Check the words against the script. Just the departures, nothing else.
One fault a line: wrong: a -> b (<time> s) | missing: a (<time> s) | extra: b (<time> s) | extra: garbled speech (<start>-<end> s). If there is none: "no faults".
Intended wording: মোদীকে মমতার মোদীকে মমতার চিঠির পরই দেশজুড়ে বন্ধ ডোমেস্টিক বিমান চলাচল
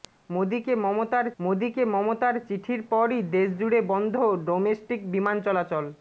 no faults